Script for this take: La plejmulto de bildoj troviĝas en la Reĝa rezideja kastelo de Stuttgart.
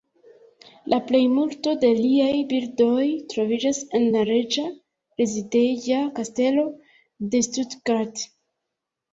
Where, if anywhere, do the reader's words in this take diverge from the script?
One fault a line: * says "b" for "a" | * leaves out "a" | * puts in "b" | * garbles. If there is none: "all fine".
* puts in "liaj"